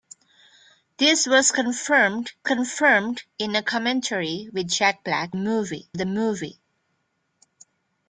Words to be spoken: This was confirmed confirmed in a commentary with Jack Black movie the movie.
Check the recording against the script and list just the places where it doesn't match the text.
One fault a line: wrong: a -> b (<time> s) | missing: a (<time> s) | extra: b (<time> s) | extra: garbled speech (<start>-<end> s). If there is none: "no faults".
no faults